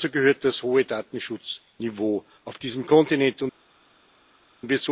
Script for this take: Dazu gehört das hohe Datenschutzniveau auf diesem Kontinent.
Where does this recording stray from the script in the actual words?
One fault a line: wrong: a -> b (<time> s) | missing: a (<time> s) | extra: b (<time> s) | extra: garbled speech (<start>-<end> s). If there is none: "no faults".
no faults